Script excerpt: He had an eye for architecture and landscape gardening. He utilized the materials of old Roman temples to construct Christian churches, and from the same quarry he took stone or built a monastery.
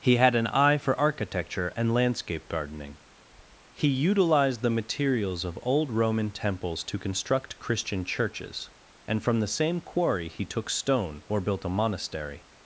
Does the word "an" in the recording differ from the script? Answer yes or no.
no